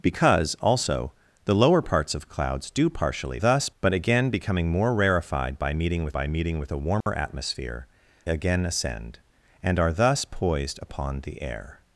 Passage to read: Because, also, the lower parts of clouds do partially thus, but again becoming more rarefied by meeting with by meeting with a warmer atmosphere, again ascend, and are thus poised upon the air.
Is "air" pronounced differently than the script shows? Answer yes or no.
no